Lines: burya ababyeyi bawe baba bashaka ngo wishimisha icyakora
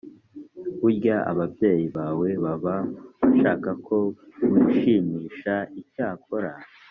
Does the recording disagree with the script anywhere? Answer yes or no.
yes